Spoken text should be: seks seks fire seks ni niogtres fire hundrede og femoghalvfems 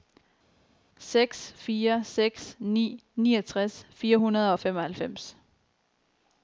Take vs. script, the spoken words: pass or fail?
fail